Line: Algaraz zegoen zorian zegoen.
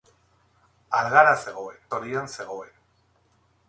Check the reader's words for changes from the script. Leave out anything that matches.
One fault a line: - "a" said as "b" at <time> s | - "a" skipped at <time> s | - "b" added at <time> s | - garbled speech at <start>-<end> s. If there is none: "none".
none